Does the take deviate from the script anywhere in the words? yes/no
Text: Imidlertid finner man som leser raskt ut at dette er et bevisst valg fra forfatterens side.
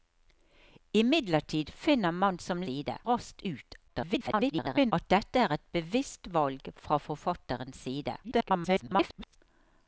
yes